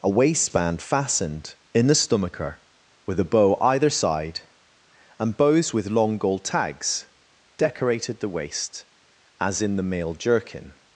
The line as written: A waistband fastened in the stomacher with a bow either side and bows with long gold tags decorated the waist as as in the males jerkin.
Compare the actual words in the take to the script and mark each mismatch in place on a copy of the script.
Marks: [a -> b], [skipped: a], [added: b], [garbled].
A waistband fastened in the stomacher with a bow either side and bows with long gold tags decorated the waist as [skipped: as] in the [males -> male] jerkin.